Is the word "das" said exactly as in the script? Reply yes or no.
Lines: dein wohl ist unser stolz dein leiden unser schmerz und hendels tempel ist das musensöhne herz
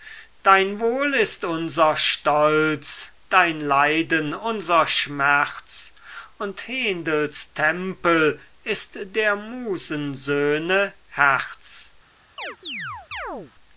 no